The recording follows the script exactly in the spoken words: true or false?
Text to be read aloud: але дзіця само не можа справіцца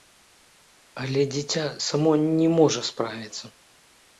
true